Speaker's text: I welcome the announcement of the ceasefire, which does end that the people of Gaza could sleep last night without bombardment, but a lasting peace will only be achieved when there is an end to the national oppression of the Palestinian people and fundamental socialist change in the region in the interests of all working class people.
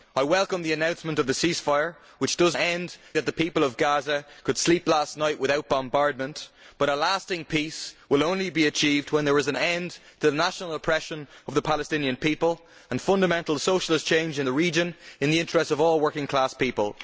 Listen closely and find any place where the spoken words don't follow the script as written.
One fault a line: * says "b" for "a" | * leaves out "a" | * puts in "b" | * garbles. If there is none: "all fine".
all fine